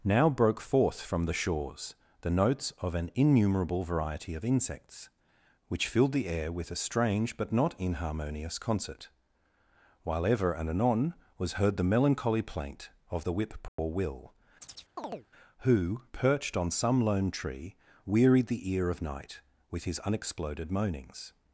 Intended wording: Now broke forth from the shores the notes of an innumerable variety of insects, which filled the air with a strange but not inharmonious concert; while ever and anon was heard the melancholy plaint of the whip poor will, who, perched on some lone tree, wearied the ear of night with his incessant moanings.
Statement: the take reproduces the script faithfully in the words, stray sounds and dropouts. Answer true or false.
false